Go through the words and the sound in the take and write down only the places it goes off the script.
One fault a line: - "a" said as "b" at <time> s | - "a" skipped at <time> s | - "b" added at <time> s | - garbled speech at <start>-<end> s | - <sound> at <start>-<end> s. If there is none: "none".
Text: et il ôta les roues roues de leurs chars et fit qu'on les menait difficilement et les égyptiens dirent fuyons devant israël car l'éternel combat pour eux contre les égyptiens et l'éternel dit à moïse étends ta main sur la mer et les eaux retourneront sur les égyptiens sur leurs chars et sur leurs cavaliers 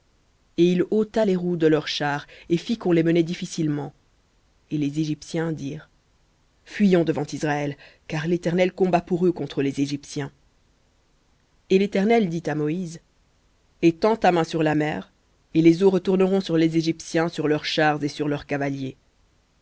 - "roues" skipped at 1.6 s